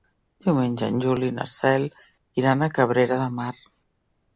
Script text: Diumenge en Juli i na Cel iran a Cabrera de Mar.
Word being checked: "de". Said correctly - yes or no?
yes